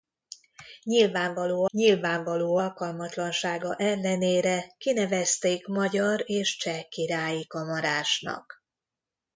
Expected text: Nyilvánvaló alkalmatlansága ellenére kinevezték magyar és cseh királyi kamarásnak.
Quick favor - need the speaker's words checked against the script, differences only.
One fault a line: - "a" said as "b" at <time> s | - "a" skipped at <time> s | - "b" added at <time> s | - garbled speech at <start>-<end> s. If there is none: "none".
- "nyilvánvaló" added at 1.7 s